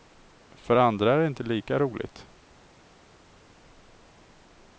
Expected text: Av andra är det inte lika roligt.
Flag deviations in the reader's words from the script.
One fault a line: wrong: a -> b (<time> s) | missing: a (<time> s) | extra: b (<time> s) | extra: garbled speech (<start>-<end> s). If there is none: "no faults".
wrong: Av -> För (0.5 s)